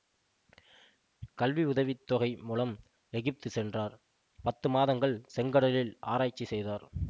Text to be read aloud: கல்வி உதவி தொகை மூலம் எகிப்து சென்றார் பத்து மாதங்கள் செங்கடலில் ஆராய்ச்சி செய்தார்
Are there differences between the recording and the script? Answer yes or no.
no